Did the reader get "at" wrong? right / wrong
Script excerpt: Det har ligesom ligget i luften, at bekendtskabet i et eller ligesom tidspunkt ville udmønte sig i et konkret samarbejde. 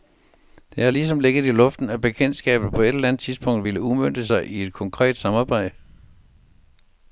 right